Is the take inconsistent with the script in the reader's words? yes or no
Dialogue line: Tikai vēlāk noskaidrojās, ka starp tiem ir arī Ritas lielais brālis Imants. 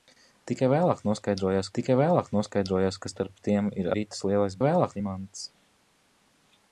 yes